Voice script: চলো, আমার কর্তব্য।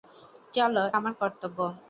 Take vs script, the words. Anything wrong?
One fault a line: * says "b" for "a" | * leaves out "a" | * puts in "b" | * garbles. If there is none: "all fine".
all fine